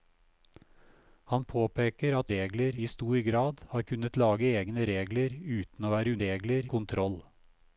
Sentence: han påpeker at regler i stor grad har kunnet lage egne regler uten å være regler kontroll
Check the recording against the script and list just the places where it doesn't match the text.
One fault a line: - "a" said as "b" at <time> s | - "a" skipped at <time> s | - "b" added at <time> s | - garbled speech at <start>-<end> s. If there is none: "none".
none